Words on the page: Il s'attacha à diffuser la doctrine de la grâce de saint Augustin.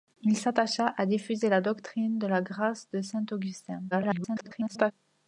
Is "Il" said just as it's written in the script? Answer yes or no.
yes